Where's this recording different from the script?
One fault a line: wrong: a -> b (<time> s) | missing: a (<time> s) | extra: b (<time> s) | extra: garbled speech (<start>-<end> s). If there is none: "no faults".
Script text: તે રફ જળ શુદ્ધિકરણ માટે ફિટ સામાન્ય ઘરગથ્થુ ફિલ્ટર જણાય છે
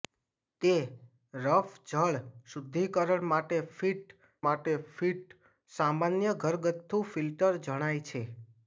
extra: માટે ફિટ (4.4 s)